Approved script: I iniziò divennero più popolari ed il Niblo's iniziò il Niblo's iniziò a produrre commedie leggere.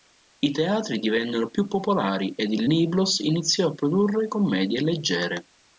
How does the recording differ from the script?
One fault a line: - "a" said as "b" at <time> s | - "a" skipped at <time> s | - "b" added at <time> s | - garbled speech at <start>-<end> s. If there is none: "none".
- "iniziò" said as "teatri" at 0.5 s
- "il Niblo's iniziò" skipped at 3.7 s